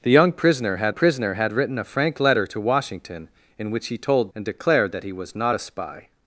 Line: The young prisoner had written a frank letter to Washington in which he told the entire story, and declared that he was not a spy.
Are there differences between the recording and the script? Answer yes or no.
yes